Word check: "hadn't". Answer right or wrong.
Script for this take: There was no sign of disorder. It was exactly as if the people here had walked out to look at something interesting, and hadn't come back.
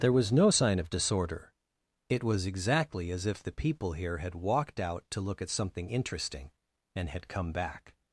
wrong